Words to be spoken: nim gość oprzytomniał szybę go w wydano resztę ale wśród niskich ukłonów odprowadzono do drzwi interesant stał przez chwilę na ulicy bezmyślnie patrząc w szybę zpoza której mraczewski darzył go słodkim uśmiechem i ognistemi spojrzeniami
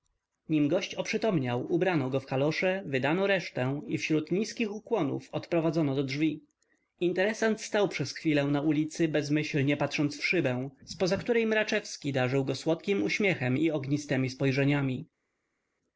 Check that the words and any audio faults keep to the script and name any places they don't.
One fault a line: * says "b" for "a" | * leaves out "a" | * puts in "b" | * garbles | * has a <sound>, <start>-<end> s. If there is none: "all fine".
* says "ubrano" for "szybę"
* puts in "kalosze"
* says "i" for "ale"